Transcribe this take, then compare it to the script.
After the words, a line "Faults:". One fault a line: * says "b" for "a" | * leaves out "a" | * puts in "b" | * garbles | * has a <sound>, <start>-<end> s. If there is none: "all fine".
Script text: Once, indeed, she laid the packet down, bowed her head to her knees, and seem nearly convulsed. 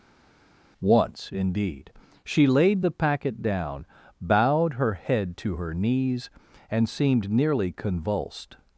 Once, indeed, she laid the packet down, bowed her head to her knees, and seemed nearly convulsed.
Faults:
* says "seemed" for "seem"